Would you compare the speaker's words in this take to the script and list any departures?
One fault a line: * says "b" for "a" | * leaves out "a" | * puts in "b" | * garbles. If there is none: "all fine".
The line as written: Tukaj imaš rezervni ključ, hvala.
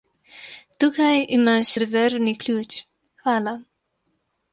all fine